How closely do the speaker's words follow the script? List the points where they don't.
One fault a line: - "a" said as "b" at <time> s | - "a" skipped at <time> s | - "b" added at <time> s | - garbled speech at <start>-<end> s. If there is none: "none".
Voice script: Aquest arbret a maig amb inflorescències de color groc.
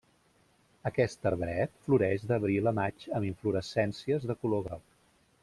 - "floreix d'abril" added at 1.9 s